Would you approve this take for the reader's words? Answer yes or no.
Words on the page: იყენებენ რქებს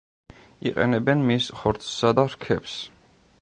no